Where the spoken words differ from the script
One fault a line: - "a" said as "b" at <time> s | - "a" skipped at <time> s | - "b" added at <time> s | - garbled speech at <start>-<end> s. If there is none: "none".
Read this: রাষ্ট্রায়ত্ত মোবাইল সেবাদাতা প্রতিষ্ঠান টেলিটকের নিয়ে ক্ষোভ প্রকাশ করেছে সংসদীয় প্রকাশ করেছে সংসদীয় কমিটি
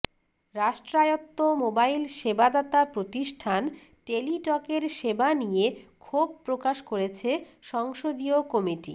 - "সেবা" added at 5.0 s
- "প্রকাশ করেছে সংসদীয়" skipped at 8.4 s